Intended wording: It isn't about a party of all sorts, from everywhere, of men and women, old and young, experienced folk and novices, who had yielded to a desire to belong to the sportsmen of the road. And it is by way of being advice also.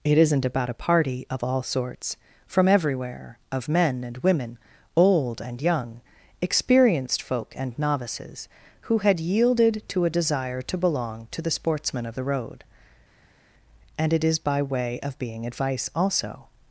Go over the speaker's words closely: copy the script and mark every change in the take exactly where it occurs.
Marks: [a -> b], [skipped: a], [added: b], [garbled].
It isn't about a party of all sorts, from everywhere, of men and women, old and young, experienced folk and novices, who had yielded to a desire to belong to the sportsmen of the road. And it is by way of being advice also.